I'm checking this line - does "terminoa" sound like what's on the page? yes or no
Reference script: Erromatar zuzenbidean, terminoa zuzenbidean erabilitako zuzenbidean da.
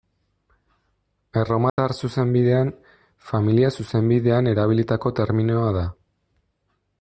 no